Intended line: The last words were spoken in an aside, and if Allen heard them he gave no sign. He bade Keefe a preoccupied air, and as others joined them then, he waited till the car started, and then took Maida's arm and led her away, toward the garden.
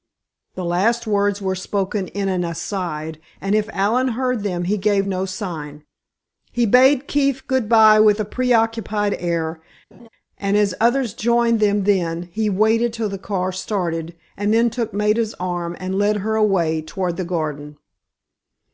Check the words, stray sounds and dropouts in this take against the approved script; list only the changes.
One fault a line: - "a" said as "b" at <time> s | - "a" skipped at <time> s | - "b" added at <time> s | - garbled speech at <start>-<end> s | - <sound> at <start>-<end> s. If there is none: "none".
- "good bye with" added at 7.5 s
- laugh at 9.9-10.1 s